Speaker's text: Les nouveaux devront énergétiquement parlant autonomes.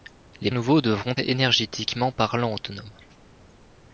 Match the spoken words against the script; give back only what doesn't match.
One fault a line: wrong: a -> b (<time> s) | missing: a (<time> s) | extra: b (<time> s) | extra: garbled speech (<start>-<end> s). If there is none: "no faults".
no faults